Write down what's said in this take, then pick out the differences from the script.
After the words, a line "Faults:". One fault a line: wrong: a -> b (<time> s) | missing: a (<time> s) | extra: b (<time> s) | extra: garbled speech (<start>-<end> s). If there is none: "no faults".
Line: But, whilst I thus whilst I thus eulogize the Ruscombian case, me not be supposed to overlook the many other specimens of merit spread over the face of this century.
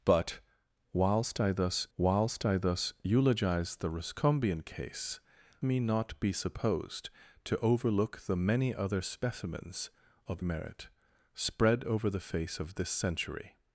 But, whilst I thus whilst I thus eulogize the Ruscombian case, me not be supposed to overlook the many other specimens of merit spread over the face of this century.
Faults:
no faults